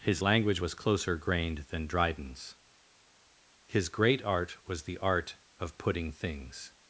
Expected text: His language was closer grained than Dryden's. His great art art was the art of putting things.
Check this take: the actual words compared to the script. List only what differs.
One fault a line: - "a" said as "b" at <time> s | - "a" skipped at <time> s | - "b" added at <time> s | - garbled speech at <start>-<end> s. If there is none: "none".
- "art" skipped at 4.6 s